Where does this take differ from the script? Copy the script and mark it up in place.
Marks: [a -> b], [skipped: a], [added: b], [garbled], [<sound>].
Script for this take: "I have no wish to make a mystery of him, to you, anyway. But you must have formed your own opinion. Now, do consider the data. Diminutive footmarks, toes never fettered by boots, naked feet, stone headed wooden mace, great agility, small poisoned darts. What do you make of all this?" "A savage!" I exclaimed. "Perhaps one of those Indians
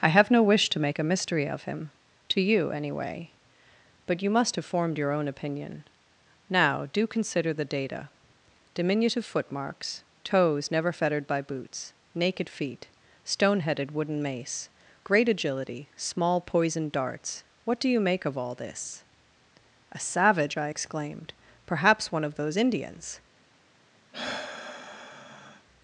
"I have no wish to make a mystery of him, to you, anyway. But you must have formed your own opinion. Now, do consider the data. Diminutive footmarks, toes never fettered by boots, naked feet, stone headed wooden mace, great agility, small poisoned darts. What do you make of all this?" "A savage!" I exclaimed. "Perhaps one of those Indians [sigh]